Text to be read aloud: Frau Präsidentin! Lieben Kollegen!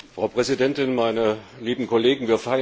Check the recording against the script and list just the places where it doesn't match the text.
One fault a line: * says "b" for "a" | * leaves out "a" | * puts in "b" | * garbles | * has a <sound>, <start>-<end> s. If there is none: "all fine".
* puts in "Meine"